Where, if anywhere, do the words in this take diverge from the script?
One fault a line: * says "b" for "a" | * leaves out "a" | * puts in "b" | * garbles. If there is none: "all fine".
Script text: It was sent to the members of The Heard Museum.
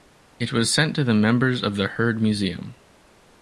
all fine